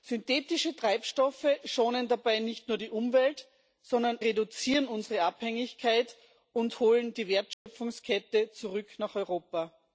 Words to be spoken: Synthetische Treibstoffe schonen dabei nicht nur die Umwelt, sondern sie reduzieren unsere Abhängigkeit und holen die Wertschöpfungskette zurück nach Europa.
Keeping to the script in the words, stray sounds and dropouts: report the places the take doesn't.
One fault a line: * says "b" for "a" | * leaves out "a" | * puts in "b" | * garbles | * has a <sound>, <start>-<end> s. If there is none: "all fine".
* leaves out "sie"
* has a dropout, 7.5-7.7 s